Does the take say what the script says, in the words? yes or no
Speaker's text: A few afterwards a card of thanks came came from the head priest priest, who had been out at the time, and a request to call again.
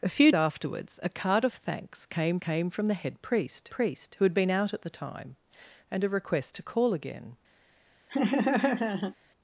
yes